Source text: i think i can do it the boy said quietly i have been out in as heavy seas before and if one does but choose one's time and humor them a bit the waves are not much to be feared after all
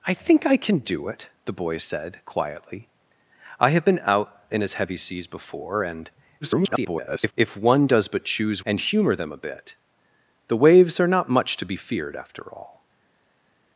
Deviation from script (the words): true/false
true